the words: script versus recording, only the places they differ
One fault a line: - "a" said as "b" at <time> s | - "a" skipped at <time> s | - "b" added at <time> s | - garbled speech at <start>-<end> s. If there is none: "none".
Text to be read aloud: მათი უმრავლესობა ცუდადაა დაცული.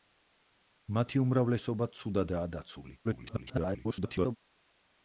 - garbled speech at 3.0-4.4 s